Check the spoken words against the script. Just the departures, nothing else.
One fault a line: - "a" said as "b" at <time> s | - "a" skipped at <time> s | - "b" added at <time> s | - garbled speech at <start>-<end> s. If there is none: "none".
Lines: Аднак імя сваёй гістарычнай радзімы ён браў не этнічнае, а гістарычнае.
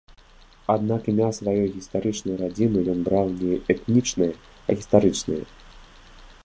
none